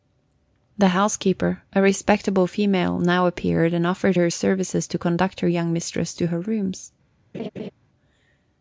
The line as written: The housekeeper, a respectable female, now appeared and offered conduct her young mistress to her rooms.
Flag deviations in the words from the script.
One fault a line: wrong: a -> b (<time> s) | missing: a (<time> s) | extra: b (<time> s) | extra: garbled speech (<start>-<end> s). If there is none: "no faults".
extra: her services to (4.1 s)